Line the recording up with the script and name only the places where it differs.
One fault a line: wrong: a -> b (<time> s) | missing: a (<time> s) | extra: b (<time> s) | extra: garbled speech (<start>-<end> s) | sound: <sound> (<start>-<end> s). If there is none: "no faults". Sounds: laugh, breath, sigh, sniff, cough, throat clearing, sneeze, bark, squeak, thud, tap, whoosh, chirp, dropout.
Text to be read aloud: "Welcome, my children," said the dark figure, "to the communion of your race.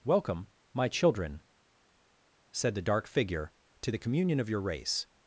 no faults